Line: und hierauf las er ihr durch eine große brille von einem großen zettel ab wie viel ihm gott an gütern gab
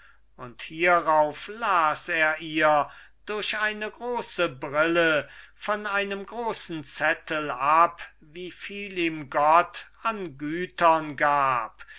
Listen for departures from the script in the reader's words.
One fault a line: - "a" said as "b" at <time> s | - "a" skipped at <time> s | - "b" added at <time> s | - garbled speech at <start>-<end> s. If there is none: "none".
none